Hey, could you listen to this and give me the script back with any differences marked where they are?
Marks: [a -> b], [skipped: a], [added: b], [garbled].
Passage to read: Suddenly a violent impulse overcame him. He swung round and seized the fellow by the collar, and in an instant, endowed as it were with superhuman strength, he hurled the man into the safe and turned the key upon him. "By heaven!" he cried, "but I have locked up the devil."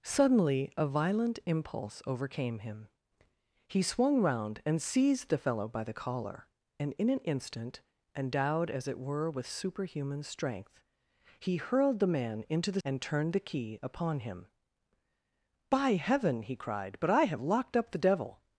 Suddenly a violent impulse overcame him. He swung round and seized the fellow by the collar, and in an instant, endowed as it were with superhuman strength, he hurled the man into the [skipped: safe] and turned the key upon him. "By heaven!" he cried, "but I have locked up the devil."